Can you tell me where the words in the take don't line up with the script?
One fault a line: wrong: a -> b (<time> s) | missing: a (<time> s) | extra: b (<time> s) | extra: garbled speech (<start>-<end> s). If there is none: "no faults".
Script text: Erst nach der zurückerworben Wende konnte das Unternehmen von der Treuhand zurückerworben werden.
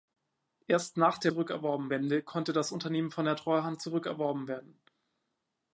no faults